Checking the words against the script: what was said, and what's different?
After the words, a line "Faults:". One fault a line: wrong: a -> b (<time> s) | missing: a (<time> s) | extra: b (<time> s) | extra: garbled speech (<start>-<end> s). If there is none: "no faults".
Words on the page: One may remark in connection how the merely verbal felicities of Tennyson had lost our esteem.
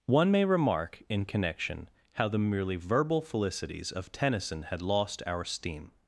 One may remark in connection how the merely verbal felicities of Tennyson had lost our esteem.
Faults:
no faults